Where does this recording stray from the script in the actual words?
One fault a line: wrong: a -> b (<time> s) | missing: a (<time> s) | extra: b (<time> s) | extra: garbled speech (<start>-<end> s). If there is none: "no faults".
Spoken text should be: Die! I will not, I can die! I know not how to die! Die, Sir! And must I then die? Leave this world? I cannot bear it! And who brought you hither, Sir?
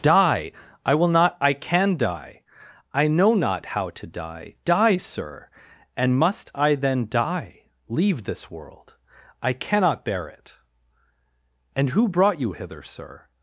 no faults